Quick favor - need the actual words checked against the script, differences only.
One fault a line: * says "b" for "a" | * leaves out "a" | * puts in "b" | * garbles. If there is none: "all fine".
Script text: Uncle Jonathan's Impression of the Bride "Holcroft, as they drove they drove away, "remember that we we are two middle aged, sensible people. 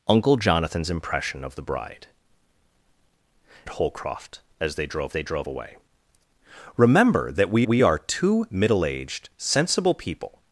all fine